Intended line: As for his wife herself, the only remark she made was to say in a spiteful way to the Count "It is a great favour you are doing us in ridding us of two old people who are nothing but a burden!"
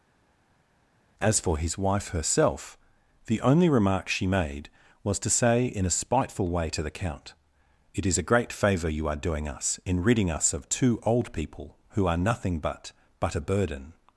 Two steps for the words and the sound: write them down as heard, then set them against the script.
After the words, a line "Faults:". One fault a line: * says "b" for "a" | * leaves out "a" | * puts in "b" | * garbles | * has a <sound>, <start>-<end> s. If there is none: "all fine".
As for his wife herself, the only remark she made was to say in a spiteful way to the Count "It is a great favour you are doing us in ridding us of two old people who are nothing but but a burden!"
Faults:
* puts in "but"